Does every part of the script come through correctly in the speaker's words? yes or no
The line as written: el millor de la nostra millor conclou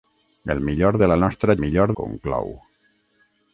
yes